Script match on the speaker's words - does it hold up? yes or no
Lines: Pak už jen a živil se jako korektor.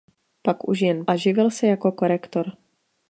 yes